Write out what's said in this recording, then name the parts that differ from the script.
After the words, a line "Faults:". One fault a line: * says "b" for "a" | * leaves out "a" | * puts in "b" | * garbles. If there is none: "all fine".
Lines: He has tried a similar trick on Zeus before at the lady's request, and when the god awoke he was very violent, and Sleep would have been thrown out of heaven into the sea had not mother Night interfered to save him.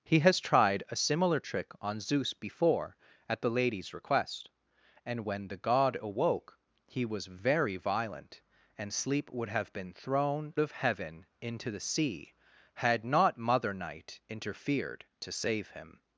He has tried a similar trick on Zeus before at the lady's request, and when the god awoke he was very violent, and Sleep would have been thrown of heaven into the sea had not mother Night interfered to save him.
Faults:
* leaves out "out"